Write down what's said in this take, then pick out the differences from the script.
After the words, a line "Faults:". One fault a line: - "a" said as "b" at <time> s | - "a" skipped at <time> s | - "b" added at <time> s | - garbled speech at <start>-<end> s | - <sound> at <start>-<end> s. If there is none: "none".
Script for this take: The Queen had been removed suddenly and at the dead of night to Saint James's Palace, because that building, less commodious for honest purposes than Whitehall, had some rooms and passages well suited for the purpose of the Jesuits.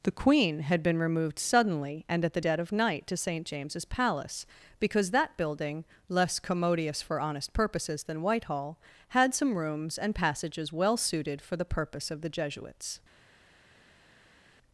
The Queen had been removed suddenly and at the dead of night to Saint James's Palace, because that building, less commodious for honest purposes than Whitehall, had some rooms and passages well suited for the purpose of the Jesuits.
Faults:
none